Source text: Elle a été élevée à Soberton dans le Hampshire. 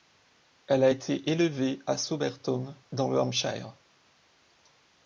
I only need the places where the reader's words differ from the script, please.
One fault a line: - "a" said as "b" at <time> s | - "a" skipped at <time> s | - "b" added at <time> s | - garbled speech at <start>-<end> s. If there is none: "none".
none